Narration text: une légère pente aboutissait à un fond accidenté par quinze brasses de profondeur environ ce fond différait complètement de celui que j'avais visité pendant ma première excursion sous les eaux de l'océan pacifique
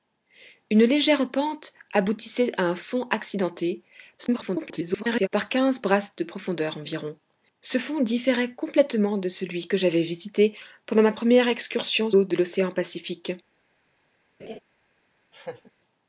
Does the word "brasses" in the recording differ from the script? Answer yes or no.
no